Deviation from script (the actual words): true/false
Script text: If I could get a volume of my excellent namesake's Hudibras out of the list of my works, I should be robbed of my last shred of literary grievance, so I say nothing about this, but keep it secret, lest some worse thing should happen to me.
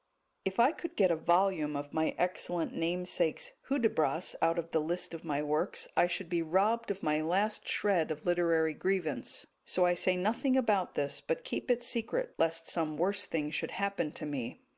false